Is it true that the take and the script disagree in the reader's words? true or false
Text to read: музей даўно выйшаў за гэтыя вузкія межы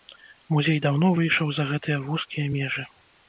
false